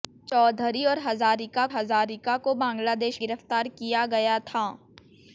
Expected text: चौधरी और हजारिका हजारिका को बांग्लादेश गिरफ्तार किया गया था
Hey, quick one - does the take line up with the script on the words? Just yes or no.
yes